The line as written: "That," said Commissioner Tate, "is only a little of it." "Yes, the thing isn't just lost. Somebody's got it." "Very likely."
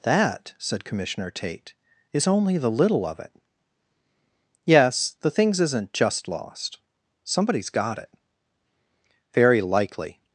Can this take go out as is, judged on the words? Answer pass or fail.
fail